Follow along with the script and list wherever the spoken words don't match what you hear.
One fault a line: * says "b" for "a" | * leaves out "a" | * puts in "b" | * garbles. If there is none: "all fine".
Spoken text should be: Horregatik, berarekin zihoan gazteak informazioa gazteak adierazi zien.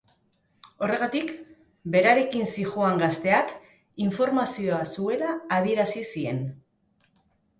* says "zuela" for "gazteak"